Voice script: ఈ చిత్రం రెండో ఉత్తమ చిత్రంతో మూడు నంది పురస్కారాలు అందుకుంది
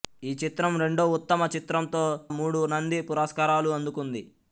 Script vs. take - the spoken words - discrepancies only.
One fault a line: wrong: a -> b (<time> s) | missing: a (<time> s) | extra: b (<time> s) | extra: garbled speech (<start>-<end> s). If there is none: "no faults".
no faults